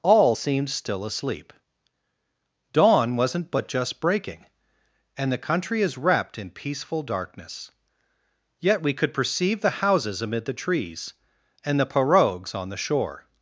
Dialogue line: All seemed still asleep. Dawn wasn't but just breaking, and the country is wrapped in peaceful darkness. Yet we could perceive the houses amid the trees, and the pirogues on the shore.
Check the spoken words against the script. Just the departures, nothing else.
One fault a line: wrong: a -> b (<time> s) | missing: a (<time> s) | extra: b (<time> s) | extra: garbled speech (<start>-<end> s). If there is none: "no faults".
no faults